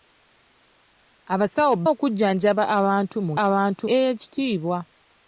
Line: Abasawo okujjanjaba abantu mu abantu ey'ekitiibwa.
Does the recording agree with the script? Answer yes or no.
yes